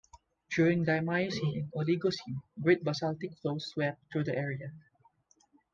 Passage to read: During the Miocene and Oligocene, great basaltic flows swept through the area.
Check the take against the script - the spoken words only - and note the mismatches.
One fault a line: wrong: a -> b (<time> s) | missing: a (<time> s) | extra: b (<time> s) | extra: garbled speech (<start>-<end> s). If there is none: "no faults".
no faults